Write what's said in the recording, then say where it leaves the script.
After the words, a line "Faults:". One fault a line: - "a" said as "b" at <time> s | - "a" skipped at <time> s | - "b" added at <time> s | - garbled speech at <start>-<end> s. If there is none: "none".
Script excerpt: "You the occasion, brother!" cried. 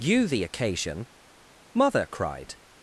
"You the occasion, mother!" cried.
Faults:
- "brother" said as "mother" at 1.7 s